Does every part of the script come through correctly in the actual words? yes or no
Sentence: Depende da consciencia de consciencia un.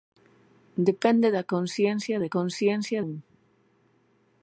yes